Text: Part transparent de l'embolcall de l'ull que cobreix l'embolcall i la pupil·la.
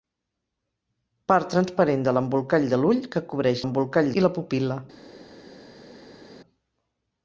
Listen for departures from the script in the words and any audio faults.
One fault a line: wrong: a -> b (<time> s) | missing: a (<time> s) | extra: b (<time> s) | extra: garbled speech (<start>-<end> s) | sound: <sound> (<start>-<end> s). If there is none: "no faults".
no faults